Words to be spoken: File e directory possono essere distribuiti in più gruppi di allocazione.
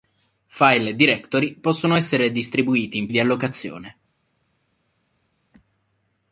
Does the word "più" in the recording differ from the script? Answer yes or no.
yes